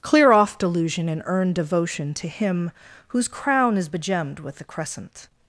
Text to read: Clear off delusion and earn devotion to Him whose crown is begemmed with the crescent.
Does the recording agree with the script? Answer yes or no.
yes